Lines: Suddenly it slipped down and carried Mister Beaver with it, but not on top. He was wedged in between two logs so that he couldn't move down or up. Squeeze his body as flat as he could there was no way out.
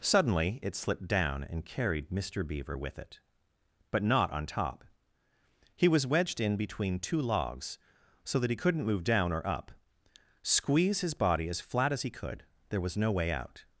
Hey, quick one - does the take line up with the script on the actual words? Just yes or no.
yes